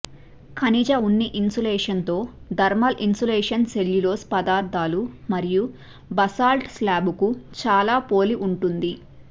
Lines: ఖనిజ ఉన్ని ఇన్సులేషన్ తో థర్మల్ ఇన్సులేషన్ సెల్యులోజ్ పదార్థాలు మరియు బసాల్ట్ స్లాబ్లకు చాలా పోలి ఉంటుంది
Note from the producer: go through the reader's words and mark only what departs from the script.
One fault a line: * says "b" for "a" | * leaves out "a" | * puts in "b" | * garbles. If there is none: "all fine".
all fine